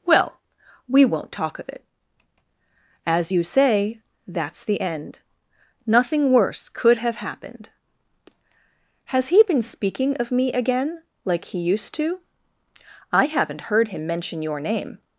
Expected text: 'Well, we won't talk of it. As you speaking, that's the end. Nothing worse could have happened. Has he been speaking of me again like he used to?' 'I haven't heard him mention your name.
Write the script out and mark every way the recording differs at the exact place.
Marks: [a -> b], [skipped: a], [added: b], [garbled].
'Well, we won't talk of it. As you [speaking, -> say] that's the end. Nothing worse could have happened. Has he been speaking of me again like he used to?' 'I haven't heard him mention your name.